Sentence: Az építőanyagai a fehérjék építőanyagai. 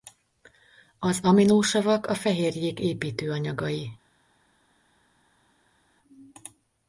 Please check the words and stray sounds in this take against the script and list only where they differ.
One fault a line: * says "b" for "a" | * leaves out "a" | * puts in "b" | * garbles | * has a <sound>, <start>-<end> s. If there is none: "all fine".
* says "aminosavak" for "építőanyagai"